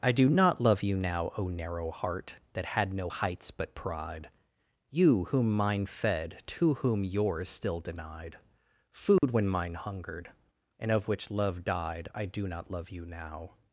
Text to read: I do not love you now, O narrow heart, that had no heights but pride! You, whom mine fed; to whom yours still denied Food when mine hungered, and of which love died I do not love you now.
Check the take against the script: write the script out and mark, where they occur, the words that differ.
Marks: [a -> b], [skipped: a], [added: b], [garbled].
I do not love you now, O narrow heart, that had no heights but pride! You, whom mine fed; to whom yours still denied Food when mine hungered, and of which love died I do not love you now.